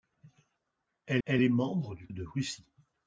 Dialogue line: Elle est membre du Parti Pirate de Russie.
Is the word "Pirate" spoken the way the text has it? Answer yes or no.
no